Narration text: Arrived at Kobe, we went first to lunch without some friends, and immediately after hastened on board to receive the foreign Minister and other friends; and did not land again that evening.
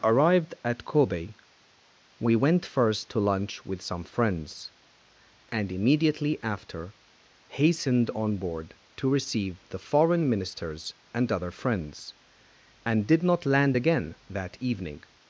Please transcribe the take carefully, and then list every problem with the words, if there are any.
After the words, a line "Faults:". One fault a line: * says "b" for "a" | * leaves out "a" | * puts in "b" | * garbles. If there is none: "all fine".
Arrived at Kobe, we went first to lunch with some friends, and immediately after hastened on board to receive the foreign Ministers and other friends; and did not land again that evening.
Faults:
* says "with" for "without"
* says "Ministers" for "Minister"